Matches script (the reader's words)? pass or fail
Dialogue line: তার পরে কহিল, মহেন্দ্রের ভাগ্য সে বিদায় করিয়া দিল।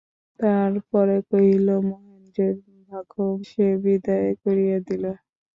pass